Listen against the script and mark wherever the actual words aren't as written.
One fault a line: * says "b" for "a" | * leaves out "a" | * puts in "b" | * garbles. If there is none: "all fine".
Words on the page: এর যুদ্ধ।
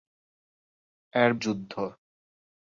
all fine